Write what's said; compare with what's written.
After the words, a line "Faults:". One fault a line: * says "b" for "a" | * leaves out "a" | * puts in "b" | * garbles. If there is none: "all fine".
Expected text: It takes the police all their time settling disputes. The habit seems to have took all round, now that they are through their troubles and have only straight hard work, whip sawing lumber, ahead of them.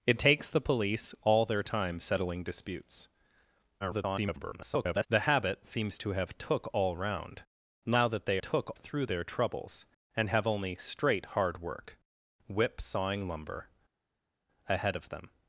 It takes the police all their time settling disputes. [garbled] The habit seems to have took all round, now that they took through their troubles and have only straight hard work, whip sawing lumber, ahead of them.
Faults:
* garbles
* says "took" for "are"